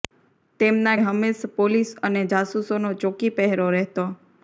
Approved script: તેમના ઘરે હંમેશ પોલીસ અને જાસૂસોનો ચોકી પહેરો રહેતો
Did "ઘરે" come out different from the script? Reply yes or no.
yes